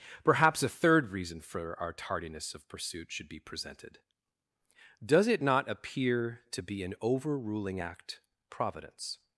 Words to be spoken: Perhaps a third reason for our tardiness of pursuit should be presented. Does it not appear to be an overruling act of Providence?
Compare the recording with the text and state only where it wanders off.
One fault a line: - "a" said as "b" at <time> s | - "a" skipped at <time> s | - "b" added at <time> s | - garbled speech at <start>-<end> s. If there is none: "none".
- "of" skipped at 8.2 s